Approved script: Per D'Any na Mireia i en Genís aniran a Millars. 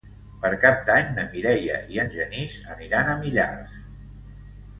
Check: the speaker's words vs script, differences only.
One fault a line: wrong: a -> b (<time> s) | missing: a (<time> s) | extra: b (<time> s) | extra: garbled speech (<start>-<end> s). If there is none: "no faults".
extra: Cap (0.6 s)